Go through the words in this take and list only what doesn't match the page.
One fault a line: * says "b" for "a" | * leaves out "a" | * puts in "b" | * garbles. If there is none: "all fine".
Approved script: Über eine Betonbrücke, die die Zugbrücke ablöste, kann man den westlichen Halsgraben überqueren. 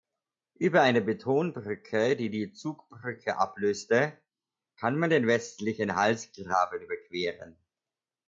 all fine